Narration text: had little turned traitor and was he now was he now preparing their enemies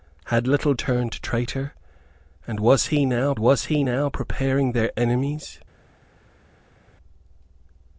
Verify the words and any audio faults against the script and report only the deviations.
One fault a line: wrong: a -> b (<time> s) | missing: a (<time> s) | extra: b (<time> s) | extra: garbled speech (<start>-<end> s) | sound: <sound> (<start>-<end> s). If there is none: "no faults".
no faults